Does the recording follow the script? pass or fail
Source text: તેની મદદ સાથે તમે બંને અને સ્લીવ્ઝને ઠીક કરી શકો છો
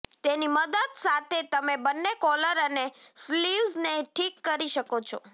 fail